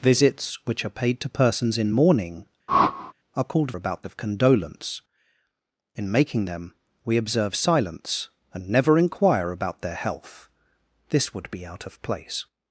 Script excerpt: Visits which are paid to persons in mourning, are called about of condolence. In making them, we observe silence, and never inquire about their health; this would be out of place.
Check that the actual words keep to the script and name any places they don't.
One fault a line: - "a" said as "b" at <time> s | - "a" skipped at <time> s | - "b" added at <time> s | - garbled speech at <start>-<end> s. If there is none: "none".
none